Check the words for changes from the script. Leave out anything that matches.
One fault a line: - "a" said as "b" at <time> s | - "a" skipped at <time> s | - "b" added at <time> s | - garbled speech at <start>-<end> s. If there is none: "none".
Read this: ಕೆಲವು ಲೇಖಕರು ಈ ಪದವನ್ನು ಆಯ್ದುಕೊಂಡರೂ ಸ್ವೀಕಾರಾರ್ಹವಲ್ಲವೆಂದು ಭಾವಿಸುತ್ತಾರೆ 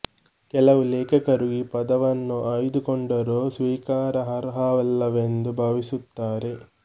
none